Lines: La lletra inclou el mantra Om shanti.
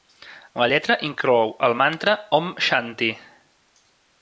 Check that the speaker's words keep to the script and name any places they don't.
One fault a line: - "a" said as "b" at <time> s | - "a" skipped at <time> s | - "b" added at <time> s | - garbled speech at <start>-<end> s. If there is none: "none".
none